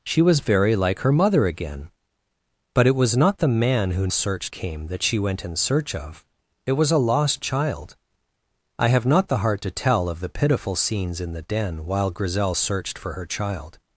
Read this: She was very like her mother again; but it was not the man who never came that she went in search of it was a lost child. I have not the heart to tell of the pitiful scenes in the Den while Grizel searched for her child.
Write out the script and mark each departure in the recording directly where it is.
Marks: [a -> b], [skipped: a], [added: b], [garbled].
She was very like her mother again; but it was not the man who [never -> searched] came that she went in search of it was a lost child. I have not the heart to tell of the pitiful scenes in the Den while Grizel searched for her child.